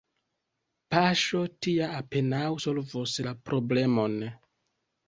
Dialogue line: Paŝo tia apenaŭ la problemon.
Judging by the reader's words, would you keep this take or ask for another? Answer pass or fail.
fail